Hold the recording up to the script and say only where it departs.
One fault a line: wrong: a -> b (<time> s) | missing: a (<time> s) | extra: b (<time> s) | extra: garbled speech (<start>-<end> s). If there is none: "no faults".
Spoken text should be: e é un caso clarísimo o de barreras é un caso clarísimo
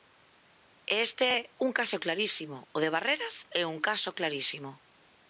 extra: este (1.1 s)